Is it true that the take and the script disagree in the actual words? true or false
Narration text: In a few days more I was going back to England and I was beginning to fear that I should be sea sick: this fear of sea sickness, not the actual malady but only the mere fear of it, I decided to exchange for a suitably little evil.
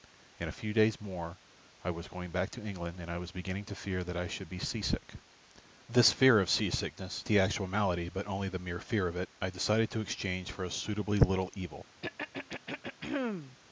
true